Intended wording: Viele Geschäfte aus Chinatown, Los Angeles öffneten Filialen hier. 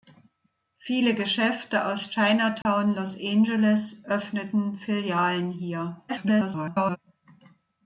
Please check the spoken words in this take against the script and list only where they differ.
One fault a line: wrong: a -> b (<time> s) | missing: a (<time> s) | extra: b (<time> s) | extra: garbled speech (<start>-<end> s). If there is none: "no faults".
extra: garbled speech (6.1-7.0 s)